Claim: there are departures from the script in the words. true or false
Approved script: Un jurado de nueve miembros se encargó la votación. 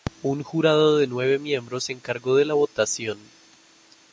true